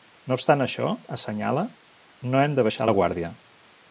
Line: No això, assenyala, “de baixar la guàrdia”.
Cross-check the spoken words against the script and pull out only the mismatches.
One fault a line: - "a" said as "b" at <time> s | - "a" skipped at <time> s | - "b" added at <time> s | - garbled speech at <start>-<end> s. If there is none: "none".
- "obstant" added at 0.4 s
- "no hem" added at 2.3 s